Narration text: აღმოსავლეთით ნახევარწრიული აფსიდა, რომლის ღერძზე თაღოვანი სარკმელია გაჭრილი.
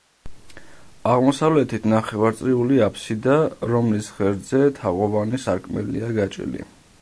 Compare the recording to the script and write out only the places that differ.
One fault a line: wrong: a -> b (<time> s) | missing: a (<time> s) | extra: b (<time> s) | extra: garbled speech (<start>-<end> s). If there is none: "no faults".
no faults